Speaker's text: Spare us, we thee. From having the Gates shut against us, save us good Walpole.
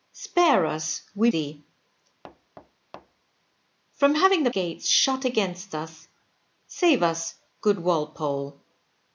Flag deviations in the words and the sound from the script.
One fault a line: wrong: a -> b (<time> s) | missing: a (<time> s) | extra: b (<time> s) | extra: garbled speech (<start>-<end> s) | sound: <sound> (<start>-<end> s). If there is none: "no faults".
sound: thud (2.2-3.3 s)